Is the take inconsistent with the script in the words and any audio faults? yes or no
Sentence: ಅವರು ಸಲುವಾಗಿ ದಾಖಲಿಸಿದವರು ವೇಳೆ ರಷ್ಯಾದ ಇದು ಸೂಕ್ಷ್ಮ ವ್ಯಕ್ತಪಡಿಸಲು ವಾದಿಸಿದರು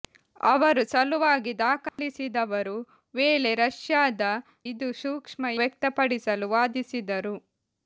yes